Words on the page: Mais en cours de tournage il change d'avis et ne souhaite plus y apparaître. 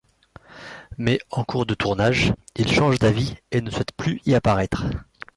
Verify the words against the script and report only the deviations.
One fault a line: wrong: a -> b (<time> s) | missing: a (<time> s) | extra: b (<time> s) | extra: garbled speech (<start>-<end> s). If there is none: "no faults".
no faults